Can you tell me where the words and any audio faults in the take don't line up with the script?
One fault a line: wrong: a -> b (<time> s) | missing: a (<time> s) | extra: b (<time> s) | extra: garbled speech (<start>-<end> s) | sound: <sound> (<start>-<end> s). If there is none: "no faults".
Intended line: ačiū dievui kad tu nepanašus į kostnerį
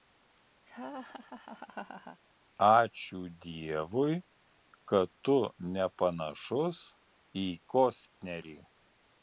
sound: laugh (0.7-2.2 s)